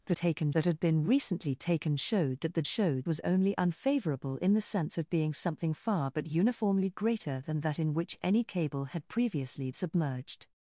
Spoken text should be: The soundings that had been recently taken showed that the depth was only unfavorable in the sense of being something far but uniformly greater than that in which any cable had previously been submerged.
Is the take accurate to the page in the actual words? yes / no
no